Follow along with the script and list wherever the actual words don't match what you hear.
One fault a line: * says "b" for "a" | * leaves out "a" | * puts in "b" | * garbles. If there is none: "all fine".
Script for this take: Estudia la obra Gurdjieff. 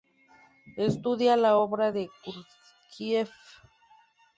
* puts in "de"